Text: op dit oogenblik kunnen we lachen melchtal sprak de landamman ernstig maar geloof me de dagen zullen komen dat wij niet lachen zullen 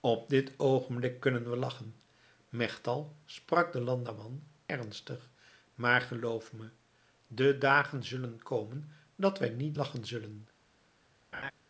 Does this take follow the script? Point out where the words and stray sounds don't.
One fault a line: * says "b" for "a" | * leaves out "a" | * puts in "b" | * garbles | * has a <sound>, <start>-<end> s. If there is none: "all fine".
* has a laugh, 11.3-11.5 s